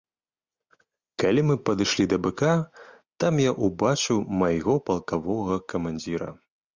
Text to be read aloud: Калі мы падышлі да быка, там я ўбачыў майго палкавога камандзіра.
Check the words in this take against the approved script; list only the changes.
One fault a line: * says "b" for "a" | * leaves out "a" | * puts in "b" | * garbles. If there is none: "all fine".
all fine